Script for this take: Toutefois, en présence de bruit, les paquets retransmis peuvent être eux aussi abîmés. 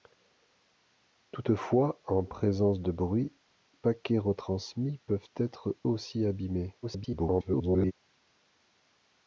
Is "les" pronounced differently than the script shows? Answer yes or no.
yes